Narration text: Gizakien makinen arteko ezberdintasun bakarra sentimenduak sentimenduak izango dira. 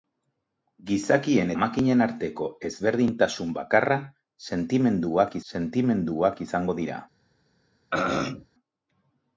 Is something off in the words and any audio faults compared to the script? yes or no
yes